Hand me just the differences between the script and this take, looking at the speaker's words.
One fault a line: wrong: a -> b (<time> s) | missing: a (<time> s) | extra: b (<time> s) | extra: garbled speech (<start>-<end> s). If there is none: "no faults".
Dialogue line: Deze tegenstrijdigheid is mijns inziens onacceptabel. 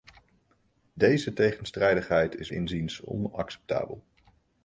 missing: mijns (2.5 s)